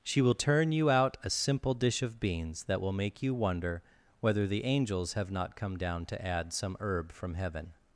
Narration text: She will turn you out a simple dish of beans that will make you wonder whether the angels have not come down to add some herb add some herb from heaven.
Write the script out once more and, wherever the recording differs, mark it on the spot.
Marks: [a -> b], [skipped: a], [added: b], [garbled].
She will turn you out a simple dish of beans that will make you wonder whether the angels have not come down to add some herb [skipped: add some herb] from heaven.